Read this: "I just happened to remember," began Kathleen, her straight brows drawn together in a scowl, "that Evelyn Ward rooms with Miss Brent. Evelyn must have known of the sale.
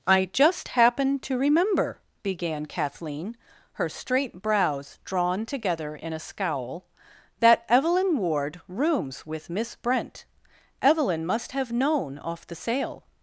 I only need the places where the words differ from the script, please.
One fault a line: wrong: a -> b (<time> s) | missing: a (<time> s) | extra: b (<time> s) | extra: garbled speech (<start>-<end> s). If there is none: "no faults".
wrong: of -> off (12.2 s)